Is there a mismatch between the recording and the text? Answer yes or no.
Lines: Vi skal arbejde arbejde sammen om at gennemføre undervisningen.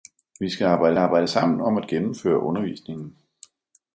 no